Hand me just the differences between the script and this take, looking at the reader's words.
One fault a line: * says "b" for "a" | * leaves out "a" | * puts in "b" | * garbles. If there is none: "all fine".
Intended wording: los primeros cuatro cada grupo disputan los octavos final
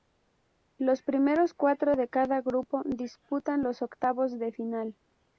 * puts in "de"
* puts in "de"